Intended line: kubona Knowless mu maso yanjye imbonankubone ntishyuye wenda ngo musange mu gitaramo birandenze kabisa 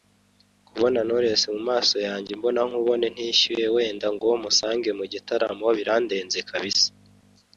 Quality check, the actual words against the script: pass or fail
pass